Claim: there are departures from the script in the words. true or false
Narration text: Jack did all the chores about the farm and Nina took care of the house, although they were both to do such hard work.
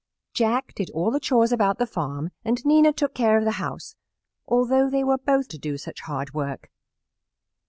false